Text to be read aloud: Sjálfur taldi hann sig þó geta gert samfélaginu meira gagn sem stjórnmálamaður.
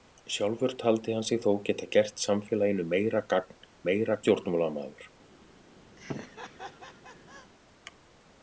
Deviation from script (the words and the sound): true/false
true